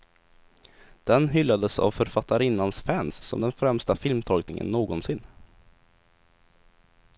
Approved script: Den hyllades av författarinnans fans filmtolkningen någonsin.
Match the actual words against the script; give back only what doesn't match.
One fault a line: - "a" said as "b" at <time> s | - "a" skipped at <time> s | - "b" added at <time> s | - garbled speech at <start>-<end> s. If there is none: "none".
- "som den främsta" added at 3.2 s